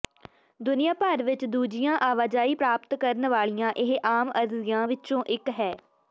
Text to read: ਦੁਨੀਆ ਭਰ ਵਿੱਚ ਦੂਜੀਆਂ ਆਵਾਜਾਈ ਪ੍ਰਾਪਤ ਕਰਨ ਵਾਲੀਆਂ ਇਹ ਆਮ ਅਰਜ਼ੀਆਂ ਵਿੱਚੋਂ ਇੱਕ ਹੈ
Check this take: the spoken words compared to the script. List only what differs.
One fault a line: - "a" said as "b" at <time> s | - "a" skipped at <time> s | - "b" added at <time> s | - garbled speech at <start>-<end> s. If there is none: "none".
none